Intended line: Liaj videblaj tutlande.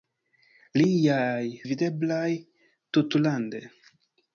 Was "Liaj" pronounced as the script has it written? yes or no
yes